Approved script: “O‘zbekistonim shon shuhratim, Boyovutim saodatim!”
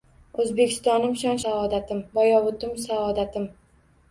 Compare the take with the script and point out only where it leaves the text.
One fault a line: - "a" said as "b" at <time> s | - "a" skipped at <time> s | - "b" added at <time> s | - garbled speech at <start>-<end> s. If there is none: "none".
- "shuhratim" said as "saodatim" at 1.4 s